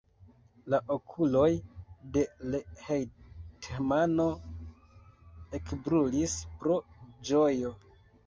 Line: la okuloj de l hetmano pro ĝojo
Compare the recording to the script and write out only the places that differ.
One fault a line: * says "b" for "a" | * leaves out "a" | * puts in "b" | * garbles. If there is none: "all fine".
* puts in "ekbrulis"